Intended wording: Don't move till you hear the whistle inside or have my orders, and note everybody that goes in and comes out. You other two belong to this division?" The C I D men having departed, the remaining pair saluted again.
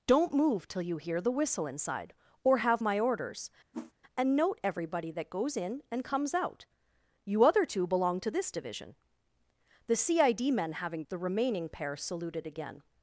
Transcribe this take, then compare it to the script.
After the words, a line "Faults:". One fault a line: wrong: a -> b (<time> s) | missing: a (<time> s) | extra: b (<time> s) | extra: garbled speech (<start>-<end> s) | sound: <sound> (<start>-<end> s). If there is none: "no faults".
Don't move till you hear the whistle inside or have my orders, and note everybody that goes in and comes out. You other two belong to this division?" The C I D men having the remaining pair saluted again.
Faults:
sound: whoosh (3.7-3.9 s)
missing: departed (11.0 s)